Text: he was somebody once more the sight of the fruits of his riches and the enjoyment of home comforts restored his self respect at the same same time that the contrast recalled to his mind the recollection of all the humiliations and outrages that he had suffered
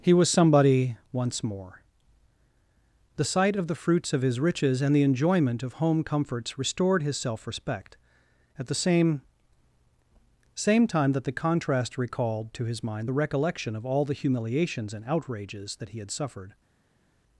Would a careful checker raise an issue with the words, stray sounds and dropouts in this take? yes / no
no